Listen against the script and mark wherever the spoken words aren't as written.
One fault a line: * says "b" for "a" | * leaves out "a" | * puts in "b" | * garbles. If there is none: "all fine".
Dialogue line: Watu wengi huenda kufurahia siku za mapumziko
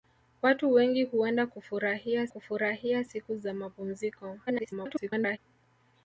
* puts in "kufurahia"
* garbles